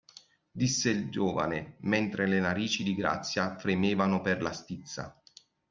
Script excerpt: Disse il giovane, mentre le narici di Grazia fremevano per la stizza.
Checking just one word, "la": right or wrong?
right